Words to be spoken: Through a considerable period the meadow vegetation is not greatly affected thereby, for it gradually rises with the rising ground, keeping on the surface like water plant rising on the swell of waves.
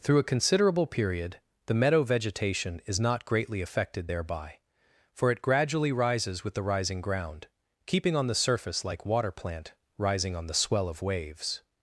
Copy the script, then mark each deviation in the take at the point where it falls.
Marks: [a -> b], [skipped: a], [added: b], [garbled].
Through a considerable period the meadow vegetation is not greatly affected thereby, for it gradually rises with the rising ground, keeping on the surface like water plant rising on the swell of waves.